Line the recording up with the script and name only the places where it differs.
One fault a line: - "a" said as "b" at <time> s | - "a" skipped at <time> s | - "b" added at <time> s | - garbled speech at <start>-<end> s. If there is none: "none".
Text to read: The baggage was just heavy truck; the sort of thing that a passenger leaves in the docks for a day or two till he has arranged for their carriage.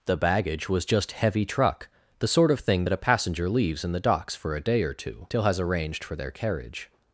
- "he" skipped at 5.4 s